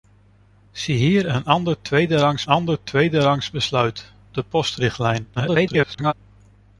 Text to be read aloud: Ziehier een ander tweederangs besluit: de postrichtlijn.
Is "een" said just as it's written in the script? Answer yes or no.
yes